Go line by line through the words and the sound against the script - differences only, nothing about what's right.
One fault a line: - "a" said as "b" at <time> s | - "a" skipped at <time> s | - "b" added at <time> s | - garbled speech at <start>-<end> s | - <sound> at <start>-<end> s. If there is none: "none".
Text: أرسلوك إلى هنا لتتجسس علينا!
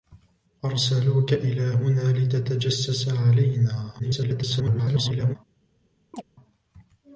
- garbled speech at 4.0-5.4 s
- chirp at 6.1-6.2 s